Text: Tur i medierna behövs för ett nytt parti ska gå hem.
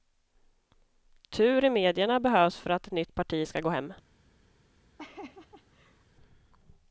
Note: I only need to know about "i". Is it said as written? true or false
true